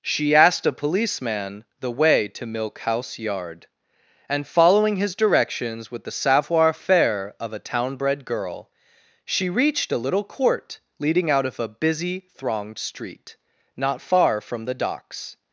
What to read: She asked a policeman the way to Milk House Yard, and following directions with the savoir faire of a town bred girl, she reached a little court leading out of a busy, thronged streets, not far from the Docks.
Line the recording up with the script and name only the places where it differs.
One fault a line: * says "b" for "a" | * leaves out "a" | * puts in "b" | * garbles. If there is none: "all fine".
* puts in "his"
* says "street" for "streets"